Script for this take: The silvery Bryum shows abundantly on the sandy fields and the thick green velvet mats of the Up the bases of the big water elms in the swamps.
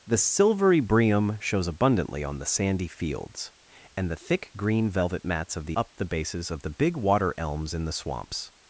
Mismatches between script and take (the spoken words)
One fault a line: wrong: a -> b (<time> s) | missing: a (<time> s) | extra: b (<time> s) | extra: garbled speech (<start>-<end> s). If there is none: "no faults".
no faults